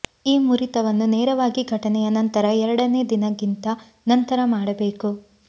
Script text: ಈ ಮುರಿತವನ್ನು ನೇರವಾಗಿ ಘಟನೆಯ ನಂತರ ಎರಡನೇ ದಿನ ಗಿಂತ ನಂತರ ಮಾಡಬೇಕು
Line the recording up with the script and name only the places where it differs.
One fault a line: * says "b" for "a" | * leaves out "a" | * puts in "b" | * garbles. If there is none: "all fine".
all fine